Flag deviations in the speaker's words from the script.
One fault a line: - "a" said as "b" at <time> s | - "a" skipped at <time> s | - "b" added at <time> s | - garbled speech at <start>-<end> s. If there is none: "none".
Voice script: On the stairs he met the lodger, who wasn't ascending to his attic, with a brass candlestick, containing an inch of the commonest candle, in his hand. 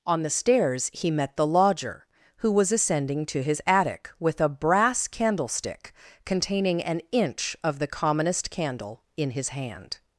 - "wasn't" said as "was" at 2.5 s